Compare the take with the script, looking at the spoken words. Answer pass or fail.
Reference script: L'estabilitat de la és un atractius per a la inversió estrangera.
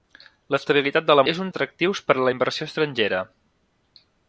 pass